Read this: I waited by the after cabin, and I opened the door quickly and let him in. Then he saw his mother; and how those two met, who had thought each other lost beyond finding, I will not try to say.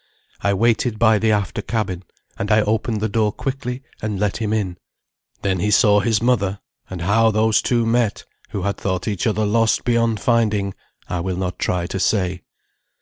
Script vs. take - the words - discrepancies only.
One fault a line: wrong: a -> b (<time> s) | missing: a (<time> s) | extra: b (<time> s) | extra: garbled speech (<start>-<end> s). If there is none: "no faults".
no faults